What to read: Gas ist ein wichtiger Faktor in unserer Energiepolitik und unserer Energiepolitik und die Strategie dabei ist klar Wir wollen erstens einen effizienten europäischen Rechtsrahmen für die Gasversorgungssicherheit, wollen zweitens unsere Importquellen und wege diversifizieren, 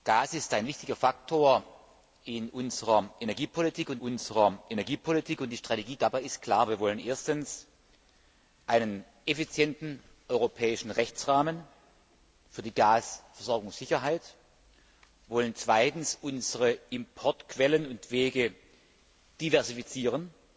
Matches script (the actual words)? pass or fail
pass